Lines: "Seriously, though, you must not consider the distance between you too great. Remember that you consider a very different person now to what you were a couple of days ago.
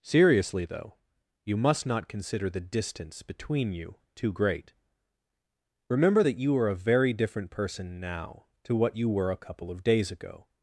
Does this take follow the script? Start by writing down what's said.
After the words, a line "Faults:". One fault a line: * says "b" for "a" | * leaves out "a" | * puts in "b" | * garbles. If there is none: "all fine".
"Seriously, though, you must not consider the distance between you too great. Remember that you are a very different person now to what you were a couple of days ago.
Faults:
* says "are" for "consider"